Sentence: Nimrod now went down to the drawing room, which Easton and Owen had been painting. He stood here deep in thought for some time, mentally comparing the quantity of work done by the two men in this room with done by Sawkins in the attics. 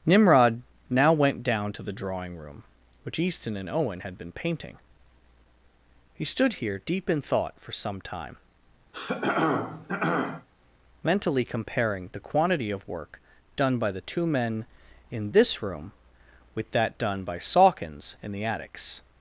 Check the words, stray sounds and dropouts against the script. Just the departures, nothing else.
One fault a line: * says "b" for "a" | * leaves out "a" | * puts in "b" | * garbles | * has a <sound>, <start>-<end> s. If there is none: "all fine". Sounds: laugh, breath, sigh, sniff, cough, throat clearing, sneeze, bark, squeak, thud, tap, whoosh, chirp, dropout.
* has a throat clearing, 8.9-10.5 s
* puts in "that"